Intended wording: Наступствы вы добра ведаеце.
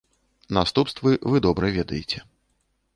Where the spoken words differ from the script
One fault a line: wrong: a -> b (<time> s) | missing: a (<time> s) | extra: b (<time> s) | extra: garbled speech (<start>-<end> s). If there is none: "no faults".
no faults